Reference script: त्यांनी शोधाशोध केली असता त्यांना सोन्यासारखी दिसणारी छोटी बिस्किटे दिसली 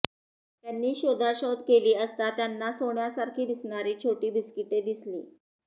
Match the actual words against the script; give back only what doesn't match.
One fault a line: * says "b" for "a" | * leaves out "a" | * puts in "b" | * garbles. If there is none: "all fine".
all fine